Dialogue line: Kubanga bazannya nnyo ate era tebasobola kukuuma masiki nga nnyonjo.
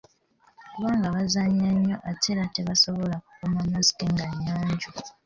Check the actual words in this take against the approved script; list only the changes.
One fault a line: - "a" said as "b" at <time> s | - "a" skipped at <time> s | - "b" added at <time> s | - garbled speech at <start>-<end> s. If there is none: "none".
none